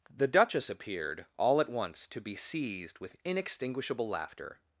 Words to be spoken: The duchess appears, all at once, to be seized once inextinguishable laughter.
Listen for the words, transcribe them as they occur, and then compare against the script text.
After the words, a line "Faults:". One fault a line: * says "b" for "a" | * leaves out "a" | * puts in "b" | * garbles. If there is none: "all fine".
The duchess appeared, all at once, to be seized with inextinguishable laughter.
Faults:
* says "appeared" for "appears"
* says "with" for "once"